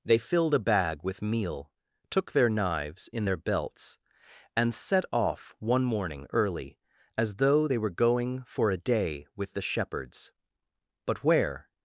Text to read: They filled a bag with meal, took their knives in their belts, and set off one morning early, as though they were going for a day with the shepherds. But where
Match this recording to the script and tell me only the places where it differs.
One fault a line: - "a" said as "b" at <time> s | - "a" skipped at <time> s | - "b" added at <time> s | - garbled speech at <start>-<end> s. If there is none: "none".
none